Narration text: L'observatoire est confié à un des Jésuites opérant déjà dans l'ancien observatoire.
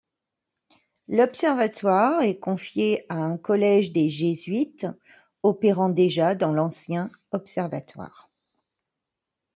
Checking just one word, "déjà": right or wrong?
right